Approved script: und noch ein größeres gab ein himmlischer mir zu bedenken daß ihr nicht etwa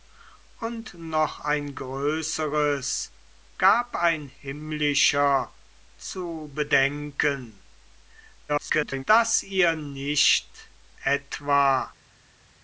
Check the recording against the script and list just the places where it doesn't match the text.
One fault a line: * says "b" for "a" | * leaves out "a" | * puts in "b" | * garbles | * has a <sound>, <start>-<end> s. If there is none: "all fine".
* leaves out "mir"
* garbles